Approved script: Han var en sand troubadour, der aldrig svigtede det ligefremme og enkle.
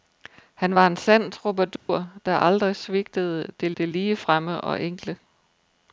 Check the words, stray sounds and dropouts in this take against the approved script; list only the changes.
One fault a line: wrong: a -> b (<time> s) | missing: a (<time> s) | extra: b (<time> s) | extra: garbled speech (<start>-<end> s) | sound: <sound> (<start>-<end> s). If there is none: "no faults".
sound: dropout (1.8-1.9 s)
extra: det (3.8 s)